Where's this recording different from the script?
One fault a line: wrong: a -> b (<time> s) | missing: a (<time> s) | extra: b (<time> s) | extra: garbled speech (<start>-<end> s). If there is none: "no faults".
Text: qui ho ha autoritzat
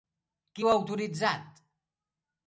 no faults